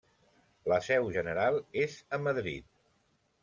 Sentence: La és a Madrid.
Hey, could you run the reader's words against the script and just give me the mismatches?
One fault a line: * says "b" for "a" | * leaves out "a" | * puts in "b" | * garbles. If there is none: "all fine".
* puts in "seu general"